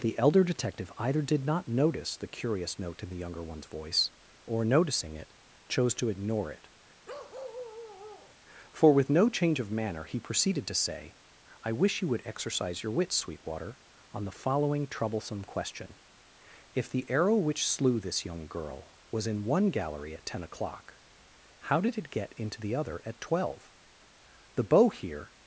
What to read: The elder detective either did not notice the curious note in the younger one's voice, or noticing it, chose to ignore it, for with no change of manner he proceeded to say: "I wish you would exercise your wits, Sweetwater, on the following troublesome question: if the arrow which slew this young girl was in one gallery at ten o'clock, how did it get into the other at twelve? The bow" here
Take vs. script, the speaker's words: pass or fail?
pass